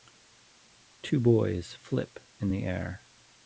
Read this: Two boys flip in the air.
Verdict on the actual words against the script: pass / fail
pass